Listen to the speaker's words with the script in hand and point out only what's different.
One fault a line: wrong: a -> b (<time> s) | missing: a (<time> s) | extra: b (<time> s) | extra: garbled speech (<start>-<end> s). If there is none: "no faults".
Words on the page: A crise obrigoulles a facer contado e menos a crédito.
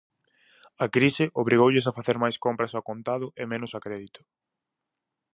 extra: máis compras ao (2.2 s)